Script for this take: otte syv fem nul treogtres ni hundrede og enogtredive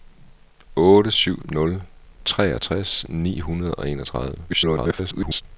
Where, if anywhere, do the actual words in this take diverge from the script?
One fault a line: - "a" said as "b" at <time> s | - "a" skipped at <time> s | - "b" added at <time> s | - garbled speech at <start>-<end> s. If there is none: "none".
- "fem" skipped at 1.4 s
- garbled speech at 4.5-5.4 s